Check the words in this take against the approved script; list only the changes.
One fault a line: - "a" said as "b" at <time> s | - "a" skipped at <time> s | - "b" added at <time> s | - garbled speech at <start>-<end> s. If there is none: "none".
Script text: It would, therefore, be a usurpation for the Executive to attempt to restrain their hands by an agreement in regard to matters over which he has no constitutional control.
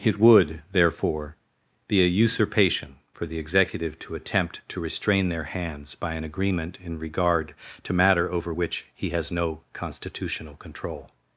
- "matters" said as "matter" at 7.9 s